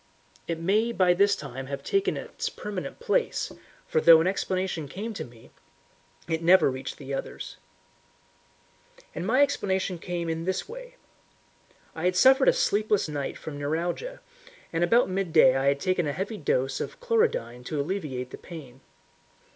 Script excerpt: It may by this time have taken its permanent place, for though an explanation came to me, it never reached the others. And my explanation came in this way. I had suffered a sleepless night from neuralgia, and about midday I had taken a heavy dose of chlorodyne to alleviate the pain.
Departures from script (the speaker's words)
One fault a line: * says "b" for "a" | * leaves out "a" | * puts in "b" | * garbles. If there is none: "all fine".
all fine